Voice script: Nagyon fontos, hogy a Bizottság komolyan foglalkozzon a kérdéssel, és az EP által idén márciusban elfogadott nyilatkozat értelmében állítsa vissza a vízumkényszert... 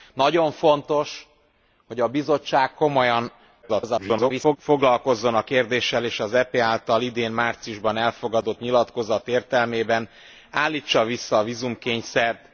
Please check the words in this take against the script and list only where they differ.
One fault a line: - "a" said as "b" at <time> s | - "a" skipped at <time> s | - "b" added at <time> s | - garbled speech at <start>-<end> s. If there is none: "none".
- garbled speech at 3.6-4.6 s